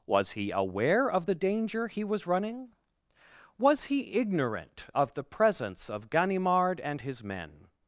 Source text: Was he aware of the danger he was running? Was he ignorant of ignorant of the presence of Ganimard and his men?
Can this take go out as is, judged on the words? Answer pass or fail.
fail